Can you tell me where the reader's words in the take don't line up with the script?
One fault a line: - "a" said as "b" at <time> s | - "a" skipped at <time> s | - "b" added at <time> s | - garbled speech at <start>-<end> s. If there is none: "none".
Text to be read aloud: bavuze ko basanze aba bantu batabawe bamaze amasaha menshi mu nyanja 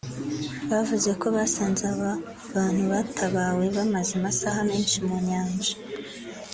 none